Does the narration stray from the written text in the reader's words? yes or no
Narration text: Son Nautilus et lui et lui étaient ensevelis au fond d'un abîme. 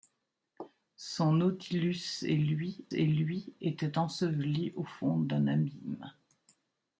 no